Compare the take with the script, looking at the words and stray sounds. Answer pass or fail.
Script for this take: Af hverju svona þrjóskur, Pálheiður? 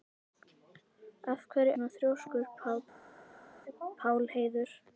pass